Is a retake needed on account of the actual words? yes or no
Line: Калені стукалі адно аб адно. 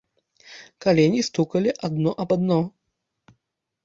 no